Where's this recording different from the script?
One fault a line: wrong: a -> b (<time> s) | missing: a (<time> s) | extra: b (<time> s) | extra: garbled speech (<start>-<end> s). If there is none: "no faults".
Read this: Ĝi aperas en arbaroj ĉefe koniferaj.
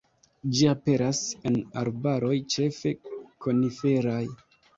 no faults